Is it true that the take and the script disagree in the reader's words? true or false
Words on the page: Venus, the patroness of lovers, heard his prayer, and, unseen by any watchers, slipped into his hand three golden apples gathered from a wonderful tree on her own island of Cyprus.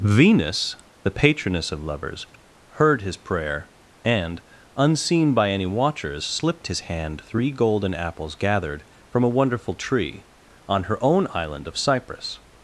true